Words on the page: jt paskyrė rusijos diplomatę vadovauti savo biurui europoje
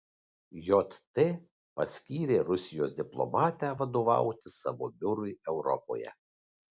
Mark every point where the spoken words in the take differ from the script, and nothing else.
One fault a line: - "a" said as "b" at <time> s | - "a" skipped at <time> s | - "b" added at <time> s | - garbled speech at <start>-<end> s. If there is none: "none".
none